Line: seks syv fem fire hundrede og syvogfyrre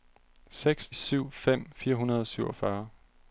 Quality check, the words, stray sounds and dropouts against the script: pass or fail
pass